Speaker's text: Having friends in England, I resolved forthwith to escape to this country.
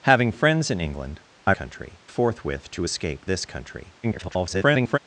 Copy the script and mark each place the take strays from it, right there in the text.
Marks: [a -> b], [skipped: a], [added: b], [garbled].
Having friends in England, I [resolved -> country] forthwith to escape [skipped: to] this country. [garbled]